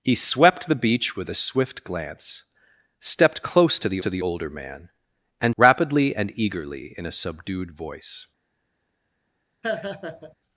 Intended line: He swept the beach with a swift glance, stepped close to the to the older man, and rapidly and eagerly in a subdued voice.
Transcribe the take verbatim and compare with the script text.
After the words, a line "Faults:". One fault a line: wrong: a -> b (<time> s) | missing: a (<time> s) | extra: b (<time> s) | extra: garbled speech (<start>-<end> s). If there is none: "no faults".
He swept the beach with a swift glance, stepped close to the to the older man, and rapidly and eagerly in a subdued voice.
Faults:
no faults